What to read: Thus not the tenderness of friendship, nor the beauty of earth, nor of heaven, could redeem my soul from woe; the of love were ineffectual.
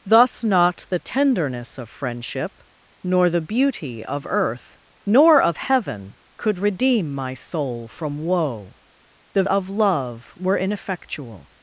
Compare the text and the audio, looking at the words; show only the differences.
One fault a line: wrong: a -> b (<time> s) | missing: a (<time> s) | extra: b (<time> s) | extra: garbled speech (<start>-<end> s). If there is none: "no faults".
no faults